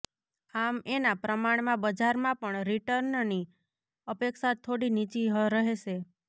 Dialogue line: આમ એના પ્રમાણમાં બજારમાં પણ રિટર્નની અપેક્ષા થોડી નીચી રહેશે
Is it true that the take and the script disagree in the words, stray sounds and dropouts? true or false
false